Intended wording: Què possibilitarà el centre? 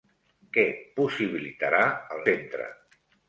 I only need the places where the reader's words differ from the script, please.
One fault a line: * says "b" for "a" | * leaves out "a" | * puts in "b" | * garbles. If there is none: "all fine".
all fine